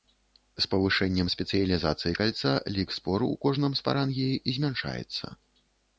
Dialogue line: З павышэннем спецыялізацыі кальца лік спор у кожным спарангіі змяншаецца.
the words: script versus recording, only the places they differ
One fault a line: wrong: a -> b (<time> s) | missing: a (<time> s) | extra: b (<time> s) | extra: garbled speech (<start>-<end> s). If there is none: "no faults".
no faults